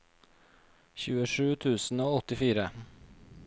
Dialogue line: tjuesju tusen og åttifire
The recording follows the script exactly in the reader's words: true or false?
true